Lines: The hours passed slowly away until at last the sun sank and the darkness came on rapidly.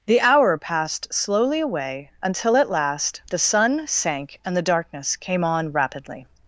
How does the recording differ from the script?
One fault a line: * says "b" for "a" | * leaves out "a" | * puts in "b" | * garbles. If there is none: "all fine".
* says "hour" for "hours"